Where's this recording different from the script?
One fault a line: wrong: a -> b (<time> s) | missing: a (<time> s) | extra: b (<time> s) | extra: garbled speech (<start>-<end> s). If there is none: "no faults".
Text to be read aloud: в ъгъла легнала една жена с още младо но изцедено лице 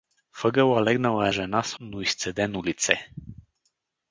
missing: една (1.3 s)
missing: още младо (1.8 s)